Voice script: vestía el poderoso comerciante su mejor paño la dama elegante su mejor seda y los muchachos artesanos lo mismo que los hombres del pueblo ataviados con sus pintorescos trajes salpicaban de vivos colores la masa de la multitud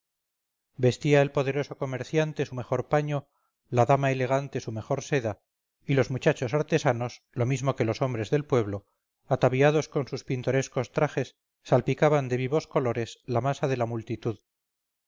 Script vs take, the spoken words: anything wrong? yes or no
no